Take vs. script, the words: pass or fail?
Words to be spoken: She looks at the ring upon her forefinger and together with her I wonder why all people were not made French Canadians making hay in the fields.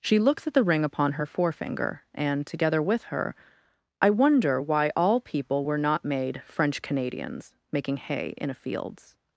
fail